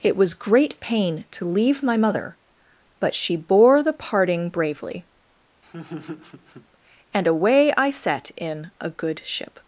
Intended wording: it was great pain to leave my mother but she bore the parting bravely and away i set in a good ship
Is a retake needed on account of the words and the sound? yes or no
yes